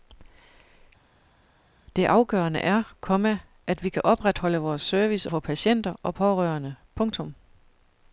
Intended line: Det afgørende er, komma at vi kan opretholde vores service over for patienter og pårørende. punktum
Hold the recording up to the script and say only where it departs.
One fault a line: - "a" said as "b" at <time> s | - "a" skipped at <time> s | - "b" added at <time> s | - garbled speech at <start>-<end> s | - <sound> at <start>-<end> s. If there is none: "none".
- "over" skipped at 5.3 s